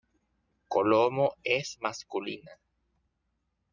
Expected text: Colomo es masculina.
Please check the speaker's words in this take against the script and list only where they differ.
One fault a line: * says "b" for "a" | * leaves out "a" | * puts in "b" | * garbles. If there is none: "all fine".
all fine